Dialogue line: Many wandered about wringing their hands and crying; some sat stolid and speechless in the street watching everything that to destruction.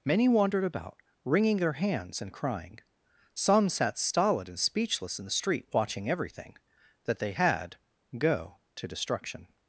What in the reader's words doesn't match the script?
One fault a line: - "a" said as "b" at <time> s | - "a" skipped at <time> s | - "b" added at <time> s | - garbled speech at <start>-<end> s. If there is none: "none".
- "they had go" added at 7.2 s